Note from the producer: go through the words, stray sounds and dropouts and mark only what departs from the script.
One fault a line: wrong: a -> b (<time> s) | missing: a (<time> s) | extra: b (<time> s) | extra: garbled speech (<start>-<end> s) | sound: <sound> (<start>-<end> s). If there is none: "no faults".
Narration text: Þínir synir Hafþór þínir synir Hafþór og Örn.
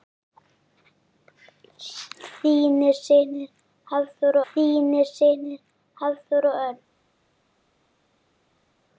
no faults